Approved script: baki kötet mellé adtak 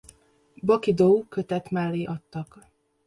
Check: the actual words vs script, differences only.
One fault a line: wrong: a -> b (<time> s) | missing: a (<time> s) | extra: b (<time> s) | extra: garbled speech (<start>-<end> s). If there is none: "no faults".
extra: dou (0.9 s)